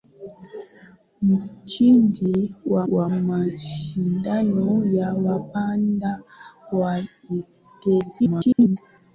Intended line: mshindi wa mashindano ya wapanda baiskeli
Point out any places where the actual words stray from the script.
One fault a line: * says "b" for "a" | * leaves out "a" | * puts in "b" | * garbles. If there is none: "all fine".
* puts in "wa"
* garbles